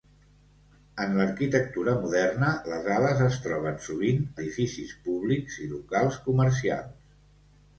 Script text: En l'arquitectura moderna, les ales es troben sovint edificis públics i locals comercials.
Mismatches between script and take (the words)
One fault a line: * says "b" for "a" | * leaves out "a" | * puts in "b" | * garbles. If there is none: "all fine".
all fine